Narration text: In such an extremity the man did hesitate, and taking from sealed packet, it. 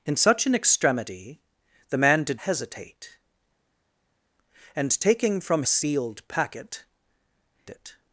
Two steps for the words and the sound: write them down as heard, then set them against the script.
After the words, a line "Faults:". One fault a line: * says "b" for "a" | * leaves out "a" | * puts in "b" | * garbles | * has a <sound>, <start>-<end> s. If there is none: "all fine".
In such an extremity the man did hesitate, and taking from sealed packet, it.
Faults:
all fine